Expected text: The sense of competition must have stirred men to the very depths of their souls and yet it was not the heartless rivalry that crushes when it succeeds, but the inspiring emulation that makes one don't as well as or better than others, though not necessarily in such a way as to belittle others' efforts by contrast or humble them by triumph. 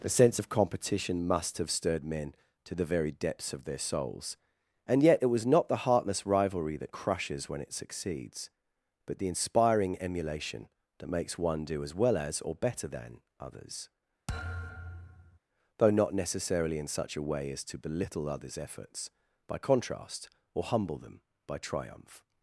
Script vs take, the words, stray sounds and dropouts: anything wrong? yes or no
yes